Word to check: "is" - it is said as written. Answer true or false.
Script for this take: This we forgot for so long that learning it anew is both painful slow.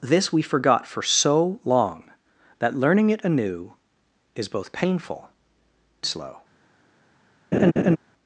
true